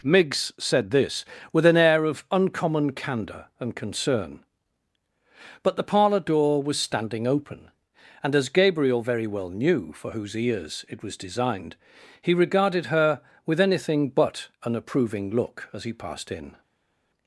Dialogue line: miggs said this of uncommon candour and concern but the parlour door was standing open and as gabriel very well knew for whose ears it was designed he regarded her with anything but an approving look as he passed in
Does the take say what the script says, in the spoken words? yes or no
no